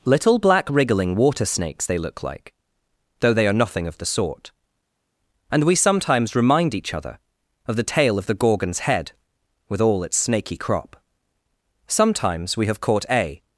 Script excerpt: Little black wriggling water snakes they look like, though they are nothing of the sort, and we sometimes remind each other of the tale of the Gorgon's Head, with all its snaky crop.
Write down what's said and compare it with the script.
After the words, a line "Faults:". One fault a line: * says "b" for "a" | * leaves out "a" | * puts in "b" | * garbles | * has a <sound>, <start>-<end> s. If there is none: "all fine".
Little black wriggling water snakes they look like, though they are nothing of the sort, and we sometimes remind each other of the tale of the Gorgon's Head, with all its snaky crop. Sometimes we have caught a
Faults:
* puts in "Sometimes we have caught a"